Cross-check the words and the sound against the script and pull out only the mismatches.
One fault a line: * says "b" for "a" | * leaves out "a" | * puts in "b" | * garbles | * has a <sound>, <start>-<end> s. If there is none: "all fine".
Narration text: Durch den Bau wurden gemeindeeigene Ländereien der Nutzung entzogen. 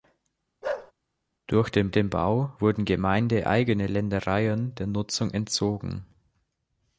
* has a bark, 0.6-0.9 s
* puts in "den"